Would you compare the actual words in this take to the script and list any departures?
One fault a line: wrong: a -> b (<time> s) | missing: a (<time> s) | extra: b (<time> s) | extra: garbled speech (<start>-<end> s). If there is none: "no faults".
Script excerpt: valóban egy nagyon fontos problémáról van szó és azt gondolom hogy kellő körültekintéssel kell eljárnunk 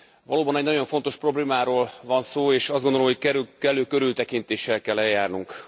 no faults